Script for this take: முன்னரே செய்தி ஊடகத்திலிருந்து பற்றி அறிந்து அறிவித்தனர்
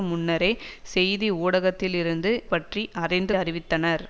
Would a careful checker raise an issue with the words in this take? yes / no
no